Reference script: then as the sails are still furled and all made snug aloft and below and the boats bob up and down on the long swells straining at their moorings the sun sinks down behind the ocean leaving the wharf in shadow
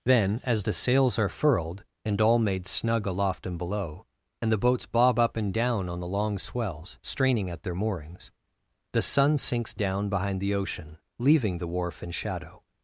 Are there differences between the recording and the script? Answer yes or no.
yes